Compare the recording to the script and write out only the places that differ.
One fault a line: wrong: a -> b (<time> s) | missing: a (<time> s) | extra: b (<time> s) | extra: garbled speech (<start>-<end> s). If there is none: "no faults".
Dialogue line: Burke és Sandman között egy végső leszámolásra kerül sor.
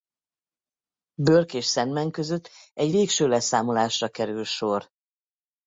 no faults